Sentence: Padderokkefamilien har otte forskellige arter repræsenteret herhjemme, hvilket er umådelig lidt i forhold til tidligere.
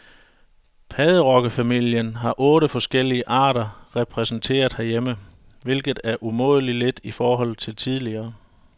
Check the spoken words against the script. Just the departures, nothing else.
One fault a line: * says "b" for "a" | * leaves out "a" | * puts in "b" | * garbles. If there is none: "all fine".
all fine